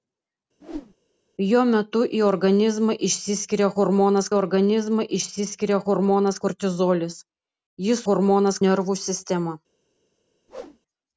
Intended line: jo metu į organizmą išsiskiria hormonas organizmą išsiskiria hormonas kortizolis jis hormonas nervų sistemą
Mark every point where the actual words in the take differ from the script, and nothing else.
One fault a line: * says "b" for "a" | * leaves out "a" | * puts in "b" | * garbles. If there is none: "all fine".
all fine